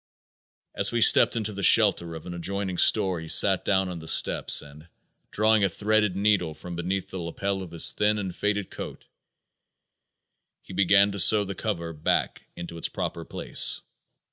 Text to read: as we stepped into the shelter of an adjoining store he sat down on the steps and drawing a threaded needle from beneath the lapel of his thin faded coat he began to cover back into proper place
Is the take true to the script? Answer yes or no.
no